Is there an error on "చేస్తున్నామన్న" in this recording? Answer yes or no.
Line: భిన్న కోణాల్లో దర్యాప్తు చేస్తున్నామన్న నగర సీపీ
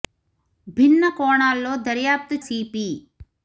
yes